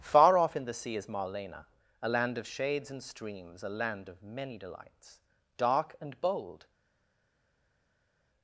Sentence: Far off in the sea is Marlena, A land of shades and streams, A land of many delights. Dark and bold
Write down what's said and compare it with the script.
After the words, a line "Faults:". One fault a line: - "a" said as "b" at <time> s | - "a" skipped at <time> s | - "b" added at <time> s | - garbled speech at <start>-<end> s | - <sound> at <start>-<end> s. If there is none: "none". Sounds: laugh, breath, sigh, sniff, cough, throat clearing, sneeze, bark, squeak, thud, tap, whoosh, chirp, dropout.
Far off in the sea is Marlena, A land of shades and streams, A land of many delights. Dark and bold
Faults:
none